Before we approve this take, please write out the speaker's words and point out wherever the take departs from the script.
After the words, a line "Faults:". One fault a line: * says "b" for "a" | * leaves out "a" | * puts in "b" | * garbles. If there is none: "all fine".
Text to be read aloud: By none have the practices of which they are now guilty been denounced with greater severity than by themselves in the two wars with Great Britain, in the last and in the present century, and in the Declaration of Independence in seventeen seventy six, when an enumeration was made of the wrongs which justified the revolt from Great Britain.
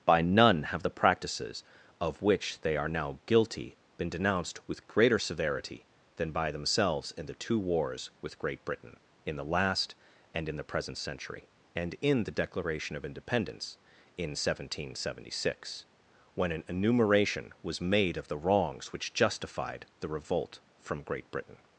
By none have the practices of which they are now guilty been denounced with greater severity than by themselves in the two wars with Great Britain, in the last and in the present century, and in the Declaration of Independence in seventeen seventy six, when an enumeration was made of the wrongs which justified the revolt from Great Britain.
Faults:
all fine